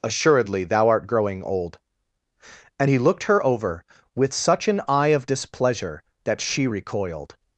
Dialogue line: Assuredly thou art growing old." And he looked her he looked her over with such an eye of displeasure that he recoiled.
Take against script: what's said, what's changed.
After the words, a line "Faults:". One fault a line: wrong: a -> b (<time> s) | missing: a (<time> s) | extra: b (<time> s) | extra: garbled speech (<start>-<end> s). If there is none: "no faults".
Assuredly thou art growing old." And he looked her over with such an eye of displeasure that she recoiled.
Faults:
missing: he looked her (3.4 s)
wrong: he -> she (6.4 s)